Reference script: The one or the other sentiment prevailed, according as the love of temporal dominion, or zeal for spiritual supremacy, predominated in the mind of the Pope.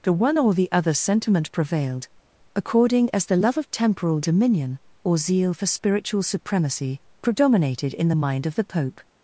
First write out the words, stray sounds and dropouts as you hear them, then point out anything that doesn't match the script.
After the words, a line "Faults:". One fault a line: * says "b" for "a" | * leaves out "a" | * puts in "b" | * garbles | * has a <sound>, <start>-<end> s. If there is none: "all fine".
The one or the other sentiment prevailed, according as the love of temporal dominion, or zeal for spiritual supremacy, predominated in the mind of the Pope.
Faults:
all fine